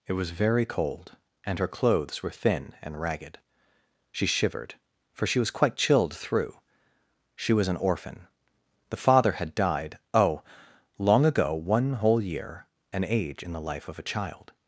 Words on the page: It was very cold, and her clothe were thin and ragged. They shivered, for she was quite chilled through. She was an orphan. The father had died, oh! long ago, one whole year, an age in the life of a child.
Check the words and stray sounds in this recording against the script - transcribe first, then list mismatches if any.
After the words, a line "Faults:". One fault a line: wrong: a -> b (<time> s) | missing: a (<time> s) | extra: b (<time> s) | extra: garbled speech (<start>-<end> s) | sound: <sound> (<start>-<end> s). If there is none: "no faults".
It was very cold, and her clothes were thin and ragged. She shivered, for she was quite chilled through. She was an orphan. The father had died, oh! long ago, one whole year, an age in the life of a child.
Faults:
wrong: clothe -> clothes (1.7 s)
wrong: They -> She (4.1 s)